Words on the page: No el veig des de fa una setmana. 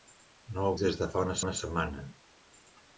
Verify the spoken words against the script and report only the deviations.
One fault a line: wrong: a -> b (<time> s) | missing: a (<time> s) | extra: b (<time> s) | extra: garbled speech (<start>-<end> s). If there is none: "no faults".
missing: veig (0.8 s)
extra: una (1.4 s)